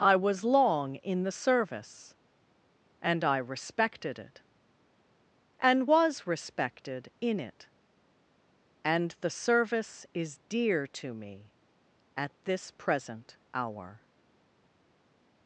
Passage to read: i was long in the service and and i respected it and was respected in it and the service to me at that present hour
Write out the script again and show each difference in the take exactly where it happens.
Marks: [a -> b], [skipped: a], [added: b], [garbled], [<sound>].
i was long in the service and [skipped: and] i respected it and was respected in it and the service [added: is dear] to me at [that -> this] present hour